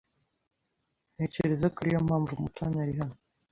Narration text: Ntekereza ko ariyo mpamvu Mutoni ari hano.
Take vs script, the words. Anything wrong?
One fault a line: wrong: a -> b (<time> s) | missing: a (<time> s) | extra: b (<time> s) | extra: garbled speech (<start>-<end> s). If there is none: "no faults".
no faults